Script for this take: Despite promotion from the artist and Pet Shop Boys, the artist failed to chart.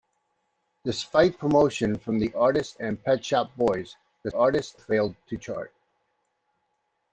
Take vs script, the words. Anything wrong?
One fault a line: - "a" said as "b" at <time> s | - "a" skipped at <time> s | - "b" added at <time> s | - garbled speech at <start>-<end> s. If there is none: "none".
none